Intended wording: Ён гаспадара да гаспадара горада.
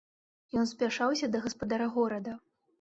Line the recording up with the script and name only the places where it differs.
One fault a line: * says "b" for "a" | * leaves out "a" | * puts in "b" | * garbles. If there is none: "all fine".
* says "спяшаўся" for "гаспадара"